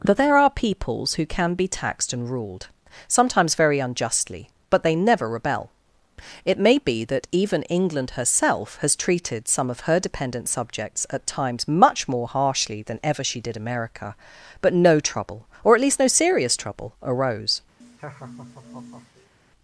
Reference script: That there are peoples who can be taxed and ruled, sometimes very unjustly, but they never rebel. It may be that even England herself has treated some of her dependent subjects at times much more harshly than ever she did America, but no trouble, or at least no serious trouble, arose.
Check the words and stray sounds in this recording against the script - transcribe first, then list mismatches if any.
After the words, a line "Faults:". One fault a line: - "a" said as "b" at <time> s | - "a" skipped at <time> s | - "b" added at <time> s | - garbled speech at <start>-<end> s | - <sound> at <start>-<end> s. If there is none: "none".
That there are peoples who can be taxed and ruled, sometimes very unjustly, but they never rebel. It may be that even England herself has treated some of her dependent subjects at times much more harshly than ever she did America, but no trouble, or at least no serious trouble, arose.
Faults:
- laugh at 17.8-19.3 s